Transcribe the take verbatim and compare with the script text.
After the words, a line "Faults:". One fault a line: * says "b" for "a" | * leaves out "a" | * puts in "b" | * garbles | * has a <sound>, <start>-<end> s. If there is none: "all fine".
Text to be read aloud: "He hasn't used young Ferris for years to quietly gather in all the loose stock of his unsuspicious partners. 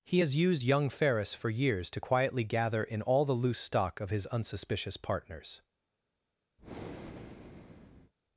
"He has used young Ferris for years to quietly gather in all the loose stock of his unsuspicious partners.
Faults:
* says "has" for "hasn't"
* has a breath, 6.6-8.1 s